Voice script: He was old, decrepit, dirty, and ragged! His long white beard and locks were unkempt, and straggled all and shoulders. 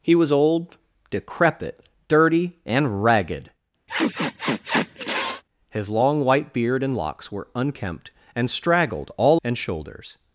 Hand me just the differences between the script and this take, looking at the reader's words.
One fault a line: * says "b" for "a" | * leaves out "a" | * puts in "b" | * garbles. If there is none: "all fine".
all fine